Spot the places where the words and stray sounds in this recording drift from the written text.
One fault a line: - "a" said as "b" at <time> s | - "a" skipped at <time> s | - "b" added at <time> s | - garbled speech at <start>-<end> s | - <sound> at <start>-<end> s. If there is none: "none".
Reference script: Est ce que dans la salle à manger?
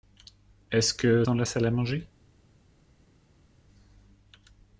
none